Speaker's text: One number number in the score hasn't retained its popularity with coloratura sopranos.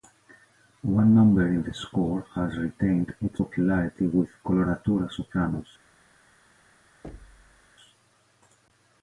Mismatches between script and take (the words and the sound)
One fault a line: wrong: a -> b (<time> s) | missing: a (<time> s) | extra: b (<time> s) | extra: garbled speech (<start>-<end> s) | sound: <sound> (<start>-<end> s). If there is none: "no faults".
missing: number (1.5 s)
wrong: hasn't -> has (2.3 s)
sound: thud (7.0-7.7 s)